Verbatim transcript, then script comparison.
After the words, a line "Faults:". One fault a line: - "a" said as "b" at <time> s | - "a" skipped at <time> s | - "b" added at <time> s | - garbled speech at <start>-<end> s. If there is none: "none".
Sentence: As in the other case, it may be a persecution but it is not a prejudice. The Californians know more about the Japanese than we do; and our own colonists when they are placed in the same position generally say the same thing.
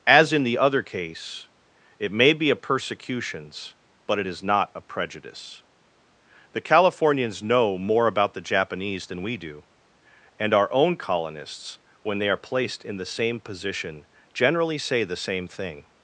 As in the other case, it may be a persecutions but it is not a prejudice. The Californians know more about the Japanese than we do; and our own colonists when they are placed in the same position generally say the same thing.
Faults:
- "persecution" said as "persecutions" at 2.5 s